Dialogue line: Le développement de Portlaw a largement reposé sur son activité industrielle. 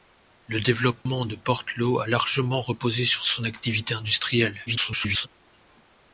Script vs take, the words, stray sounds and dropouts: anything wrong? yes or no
yes